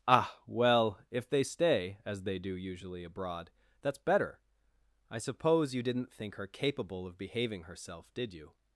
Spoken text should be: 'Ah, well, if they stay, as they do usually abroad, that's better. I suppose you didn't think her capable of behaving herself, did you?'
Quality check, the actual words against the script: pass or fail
pass